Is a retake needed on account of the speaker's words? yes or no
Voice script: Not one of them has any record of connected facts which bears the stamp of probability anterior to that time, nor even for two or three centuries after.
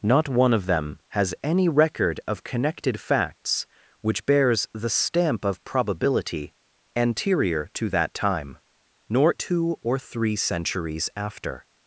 yes